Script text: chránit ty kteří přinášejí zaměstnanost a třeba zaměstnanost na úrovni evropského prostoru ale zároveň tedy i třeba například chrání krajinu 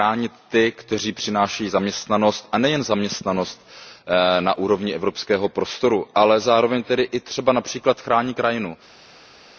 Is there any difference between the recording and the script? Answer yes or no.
yes